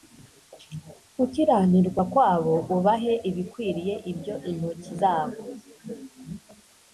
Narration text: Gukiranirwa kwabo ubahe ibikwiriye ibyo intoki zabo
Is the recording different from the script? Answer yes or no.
no